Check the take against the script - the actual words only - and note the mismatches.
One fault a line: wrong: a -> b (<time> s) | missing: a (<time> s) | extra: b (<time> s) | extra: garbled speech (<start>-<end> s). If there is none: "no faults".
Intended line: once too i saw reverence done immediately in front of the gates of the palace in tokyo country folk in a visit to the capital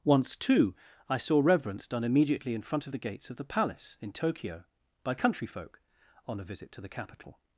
extra: by (5.0 s)
wrong: in -> on (6.3 s)